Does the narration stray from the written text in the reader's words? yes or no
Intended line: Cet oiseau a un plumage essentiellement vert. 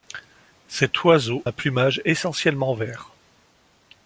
yes